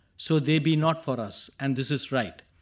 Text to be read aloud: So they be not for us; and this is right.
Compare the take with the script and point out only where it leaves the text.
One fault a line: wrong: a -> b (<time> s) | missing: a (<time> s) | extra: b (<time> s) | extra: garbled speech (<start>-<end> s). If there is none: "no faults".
no faults